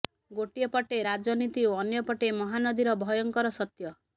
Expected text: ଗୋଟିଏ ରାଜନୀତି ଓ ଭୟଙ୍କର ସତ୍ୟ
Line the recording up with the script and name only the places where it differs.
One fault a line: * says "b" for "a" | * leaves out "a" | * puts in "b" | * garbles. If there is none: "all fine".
* puts in "ପଟେ"
* puts in "ଅନ୍ୟପଟେ ମହାନଦୀର"